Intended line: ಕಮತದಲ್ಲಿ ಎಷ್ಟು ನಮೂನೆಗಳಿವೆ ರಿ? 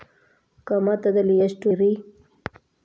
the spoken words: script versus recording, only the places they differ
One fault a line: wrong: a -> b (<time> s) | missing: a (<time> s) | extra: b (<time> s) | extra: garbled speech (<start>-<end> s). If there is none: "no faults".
missing: ನಮೂನೆಗಳಿವೆ (1.7 s)